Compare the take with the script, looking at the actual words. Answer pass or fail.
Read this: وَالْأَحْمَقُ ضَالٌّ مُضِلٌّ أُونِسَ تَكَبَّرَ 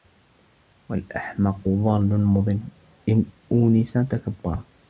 fail